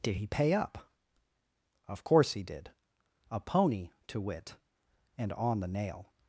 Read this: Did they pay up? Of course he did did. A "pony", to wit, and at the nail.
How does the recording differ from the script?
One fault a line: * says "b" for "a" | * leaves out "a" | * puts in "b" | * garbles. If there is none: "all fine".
* says "he" for "they"
* leaves out "did"
* says "on" for "at"